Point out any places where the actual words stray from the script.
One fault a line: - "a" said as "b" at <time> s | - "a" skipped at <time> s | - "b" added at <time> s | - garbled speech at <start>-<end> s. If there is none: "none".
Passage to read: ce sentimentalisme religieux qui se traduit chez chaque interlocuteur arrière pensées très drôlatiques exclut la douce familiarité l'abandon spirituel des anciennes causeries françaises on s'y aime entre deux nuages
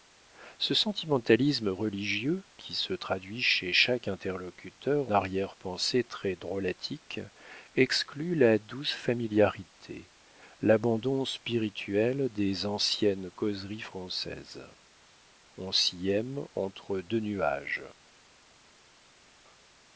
none